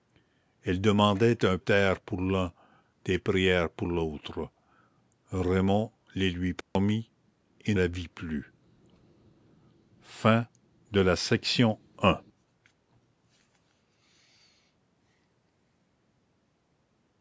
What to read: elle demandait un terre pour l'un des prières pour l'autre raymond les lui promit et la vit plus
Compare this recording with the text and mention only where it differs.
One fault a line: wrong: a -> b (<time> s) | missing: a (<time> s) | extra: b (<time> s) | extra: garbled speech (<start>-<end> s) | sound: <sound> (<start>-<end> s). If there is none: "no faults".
sound: dropout (6.6-6.8 s)